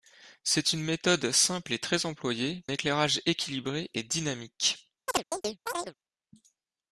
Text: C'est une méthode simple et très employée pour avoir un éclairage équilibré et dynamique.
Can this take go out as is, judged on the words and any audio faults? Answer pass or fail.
fail